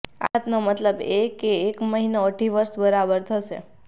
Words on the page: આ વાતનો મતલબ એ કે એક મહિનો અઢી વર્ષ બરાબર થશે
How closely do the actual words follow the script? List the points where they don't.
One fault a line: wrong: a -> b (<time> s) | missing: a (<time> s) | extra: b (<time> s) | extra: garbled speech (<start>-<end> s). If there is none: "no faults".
no faults